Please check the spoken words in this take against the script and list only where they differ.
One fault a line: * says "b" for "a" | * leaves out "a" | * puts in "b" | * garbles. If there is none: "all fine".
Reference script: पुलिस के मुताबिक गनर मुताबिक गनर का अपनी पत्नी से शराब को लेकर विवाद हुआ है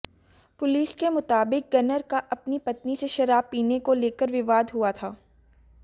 * leaves out "मुताबिक गनर"
* puts in "पीने"
* says "था" for "है"